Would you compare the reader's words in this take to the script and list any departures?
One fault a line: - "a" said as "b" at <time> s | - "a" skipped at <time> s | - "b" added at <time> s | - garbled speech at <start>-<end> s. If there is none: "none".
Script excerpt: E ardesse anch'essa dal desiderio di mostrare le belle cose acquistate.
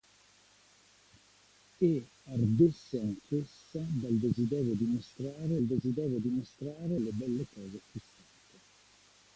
- "desiderio di mostrare" added at 5.6 s